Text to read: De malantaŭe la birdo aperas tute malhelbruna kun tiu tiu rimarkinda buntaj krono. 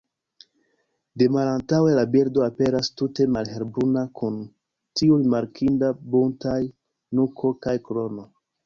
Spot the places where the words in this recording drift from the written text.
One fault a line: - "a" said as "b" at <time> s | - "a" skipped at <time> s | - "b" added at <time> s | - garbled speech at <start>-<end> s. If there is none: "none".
- "tiu" skipped at 5.2 s
- "nuko kaj" added at 7.2 s